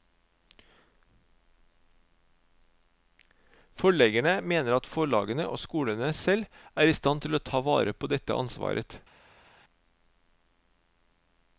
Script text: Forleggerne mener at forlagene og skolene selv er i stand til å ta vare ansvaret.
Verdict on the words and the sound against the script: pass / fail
fail